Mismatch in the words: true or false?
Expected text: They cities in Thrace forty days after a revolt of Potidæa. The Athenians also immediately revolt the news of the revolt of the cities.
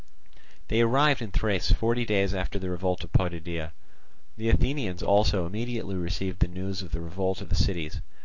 true